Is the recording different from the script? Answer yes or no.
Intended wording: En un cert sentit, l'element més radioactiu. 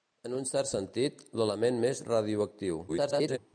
yes